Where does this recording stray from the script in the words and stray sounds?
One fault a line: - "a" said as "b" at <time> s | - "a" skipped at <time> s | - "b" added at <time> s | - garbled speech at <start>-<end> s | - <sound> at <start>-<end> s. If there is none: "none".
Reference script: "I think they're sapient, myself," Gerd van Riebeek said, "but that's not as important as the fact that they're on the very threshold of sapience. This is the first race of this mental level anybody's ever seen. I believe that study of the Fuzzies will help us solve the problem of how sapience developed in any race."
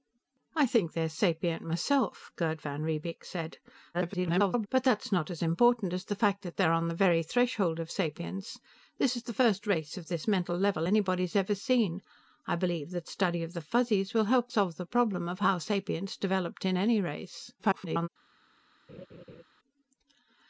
- garbled speech at 3.9-4.7 s
- "us" skipped at 14.5 s
- garbled speech at 17.6-18.1 s
- laugh at 18.9-19.4 s